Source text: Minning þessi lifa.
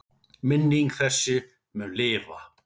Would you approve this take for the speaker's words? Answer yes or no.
no